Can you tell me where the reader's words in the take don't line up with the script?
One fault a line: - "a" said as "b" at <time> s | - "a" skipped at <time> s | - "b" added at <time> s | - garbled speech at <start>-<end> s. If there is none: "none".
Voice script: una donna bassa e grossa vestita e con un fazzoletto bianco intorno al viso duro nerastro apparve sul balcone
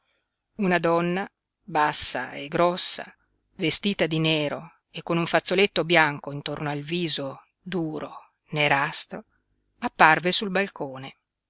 - "di nero" added at 4.1 s